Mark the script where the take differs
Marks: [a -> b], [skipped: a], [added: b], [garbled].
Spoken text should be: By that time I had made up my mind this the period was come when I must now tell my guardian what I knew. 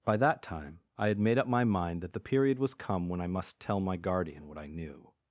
By that time I had made up my mind [this -> that] the period was come when I must [skipped: now] tell my guardian what I knew.